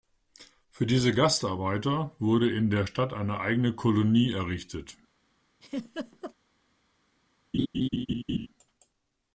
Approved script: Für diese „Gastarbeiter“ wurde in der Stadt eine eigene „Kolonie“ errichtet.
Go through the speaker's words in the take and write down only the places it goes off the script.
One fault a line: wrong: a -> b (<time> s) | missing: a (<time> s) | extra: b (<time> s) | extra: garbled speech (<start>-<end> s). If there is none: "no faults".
no faults